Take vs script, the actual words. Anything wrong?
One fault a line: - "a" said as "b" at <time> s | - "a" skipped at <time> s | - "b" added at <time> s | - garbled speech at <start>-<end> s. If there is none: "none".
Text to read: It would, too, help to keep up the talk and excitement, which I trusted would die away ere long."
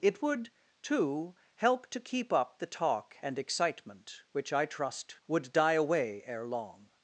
- "trusted" said as "trust" at 4.7 s